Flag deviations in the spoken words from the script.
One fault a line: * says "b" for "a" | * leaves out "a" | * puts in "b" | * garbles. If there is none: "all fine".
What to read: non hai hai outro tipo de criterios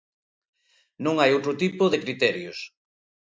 * leaves out "hai"